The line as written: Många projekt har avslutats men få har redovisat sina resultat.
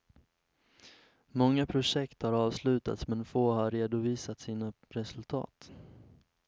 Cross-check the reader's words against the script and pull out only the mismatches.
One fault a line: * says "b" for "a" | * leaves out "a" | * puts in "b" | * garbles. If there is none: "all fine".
all fine